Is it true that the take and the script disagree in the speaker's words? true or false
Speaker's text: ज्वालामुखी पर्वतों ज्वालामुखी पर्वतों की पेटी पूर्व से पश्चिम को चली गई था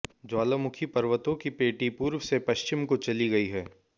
true